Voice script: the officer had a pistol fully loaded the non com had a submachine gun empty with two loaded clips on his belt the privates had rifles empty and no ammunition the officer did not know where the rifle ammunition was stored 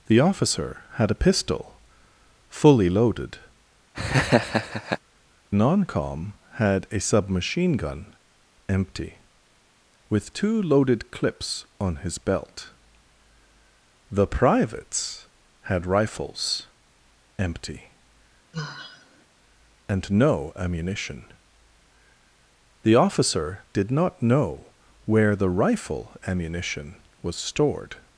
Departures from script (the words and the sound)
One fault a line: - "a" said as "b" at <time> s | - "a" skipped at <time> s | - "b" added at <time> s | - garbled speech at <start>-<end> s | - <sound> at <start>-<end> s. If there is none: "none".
- "the" skipped at 3.4 s
- laugh at 3.9-5.0 s
- sigh at 18.5-19.3 s